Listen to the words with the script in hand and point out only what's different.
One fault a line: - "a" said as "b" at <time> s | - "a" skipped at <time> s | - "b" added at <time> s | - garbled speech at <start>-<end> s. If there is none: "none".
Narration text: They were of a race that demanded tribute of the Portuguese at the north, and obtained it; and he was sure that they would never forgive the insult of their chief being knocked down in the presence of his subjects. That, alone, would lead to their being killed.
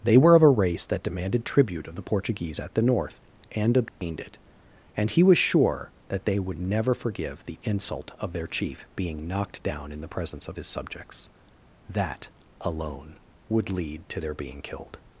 none